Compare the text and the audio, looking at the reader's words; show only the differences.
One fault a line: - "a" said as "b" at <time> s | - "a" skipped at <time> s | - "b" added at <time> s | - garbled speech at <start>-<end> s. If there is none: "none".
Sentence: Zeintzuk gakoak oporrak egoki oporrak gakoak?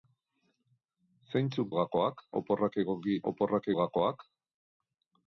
none